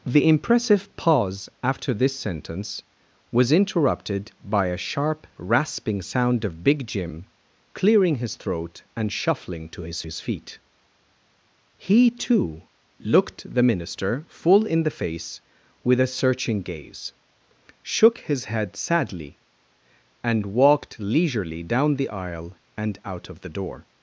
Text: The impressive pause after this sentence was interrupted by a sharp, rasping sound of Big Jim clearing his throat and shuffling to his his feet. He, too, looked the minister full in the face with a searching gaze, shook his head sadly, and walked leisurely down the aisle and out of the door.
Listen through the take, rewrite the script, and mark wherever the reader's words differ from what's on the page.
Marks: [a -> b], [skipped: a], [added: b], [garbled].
The impressive pause after this sentence was interrupted by a sharp, rasping sound of Big Jim clearing his throat and shuffling to his his feet. He, too, looked the minister full in the face with a searching gaze, shook his head sadly, and walked leisurely down the aisle and out of the door.